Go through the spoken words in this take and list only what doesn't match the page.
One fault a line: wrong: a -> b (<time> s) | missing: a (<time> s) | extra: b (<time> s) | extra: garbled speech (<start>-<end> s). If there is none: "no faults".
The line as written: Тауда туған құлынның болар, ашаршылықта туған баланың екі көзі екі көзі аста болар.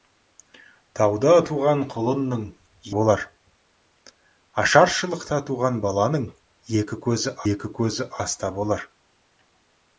no faults